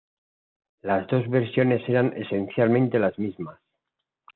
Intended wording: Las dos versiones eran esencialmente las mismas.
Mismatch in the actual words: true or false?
false